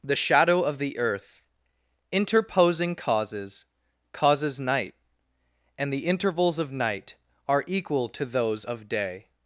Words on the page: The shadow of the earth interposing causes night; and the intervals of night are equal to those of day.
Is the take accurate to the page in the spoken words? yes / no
no